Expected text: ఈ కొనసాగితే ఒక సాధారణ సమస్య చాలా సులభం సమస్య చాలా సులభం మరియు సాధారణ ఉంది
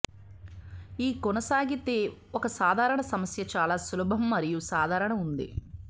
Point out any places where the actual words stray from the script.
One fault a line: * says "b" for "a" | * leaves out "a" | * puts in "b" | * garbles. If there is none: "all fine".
* leaves out "సమస్య చాలా సులభం"